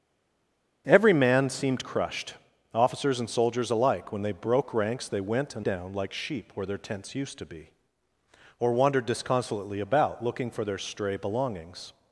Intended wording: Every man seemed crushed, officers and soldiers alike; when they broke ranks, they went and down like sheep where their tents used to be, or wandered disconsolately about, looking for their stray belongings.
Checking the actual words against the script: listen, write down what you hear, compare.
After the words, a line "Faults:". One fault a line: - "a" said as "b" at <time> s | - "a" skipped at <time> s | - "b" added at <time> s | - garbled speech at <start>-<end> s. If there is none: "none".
Every man seemed crushed, officers and soldiers alike; when they broke ranks, they went and down like sheep where their tents used to be, or wandered disconsolately about, looking for their stray belongings.
Faults:
none